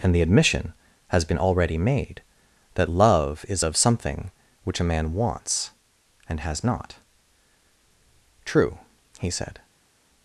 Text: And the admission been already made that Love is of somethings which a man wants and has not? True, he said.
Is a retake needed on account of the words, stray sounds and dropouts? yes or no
yes